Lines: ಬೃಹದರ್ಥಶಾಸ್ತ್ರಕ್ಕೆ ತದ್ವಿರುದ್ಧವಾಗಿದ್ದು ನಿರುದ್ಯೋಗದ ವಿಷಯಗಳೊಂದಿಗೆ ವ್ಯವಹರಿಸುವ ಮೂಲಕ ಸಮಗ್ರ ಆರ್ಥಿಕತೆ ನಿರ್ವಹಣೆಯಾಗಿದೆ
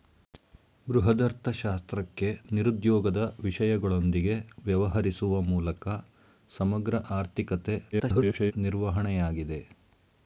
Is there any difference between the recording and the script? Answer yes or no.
yes